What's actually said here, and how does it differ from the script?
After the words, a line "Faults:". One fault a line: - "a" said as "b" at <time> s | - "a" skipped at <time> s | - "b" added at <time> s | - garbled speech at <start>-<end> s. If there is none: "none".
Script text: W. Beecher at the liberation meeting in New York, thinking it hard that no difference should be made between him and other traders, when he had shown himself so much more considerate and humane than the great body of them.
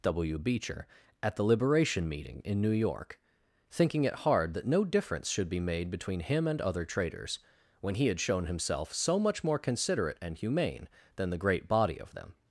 W. Beecher at the liberation meeting in New York, thinking it hard that no difference should be made between him and other traders, when he had shown himself so much more considerate and humane than the great body of them.
Faults:
none